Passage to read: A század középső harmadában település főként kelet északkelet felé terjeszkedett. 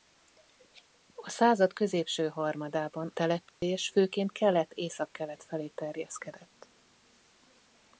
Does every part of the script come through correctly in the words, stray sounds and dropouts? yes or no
no